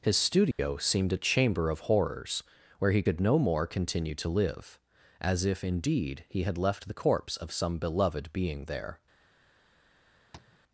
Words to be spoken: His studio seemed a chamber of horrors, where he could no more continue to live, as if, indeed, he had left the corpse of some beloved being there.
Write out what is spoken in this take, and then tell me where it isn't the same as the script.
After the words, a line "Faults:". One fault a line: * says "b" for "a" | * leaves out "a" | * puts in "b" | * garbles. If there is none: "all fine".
His studio seemed a chamber of horrors, where he could no more continue to live, as if, indeed, he had left the corpse of some beloved being there.
Faults:
all fine